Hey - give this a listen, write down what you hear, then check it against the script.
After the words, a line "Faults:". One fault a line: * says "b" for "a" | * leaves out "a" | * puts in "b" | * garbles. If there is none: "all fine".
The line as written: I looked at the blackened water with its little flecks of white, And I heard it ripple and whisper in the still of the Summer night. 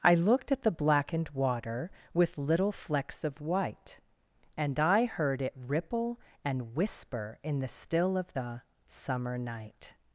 I looked at the blackened water with little flecks of white, And I heard it ripple and whisper in the still of the Summer night.
Faults:
* leaves out "its"